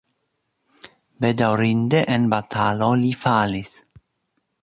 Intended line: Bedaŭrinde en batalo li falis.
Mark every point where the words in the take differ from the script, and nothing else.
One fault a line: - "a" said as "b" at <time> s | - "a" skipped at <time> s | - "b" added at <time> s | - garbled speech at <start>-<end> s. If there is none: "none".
none